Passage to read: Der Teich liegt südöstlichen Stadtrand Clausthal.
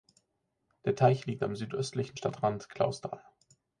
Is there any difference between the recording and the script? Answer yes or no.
yes